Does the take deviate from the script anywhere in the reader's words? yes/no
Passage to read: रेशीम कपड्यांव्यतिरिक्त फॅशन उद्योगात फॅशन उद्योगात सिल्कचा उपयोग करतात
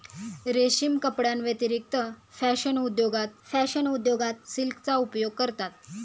no